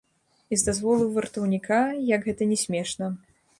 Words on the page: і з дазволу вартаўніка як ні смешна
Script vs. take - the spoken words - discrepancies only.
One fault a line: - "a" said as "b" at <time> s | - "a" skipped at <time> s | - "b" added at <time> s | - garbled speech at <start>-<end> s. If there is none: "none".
- "гэта" added at 2.3 s